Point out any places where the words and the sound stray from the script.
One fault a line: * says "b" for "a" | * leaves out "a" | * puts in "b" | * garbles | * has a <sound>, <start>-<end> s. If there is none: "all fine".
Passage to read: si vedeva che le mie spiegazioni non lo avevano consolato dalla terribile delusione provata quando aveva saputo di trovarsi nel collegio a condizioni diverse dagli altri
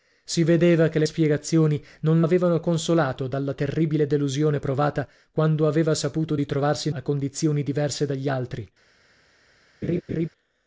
* leaves out "mie"
* leaves out "lo"
* leaves out "nel collegio"
* has a laugh, 9.8-10.3 s